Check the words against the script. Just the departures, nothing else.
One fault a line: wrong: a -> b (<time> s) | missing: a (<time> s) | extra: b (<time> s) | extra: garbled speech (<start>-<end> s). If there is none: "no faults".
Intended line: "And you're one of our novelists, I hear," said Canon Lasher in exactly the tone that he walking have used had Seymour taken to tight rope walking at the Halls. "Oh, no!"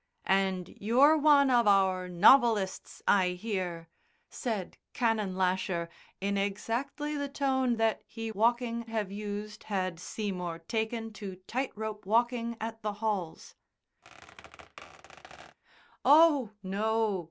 no faults